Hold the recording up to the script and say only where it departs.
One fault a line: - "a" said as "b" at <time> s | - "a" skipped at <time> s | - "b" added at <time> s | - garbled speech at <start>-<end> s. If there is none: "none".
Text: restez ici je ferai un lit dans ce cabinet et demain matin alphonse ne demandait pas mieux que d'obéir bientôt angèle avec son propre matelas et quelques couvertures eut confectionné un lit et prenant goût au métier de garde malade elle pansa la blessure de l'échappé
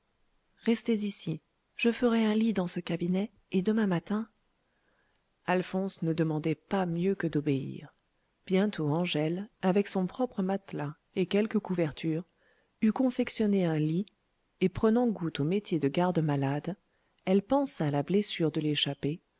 none